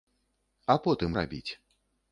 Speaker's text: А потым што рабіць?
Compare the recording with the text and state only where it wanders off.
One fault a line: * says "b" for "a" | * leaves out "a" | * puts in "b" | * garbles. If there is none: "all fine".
* leaves out "што"